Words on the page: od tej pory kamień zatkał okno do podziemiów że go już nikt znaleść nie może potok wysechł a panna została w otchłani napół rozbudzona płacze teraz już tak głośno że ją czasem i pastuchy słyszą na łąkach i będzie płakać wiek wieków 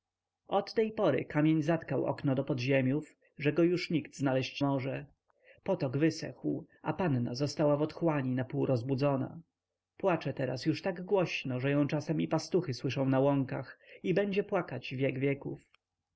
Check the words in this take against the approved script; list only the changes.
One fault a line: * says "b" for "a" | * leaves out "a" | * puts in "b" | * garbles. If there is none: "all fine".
* leaves out "nie"